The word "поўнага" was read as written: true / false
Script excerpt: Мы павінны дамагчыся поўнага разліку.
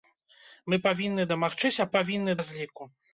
false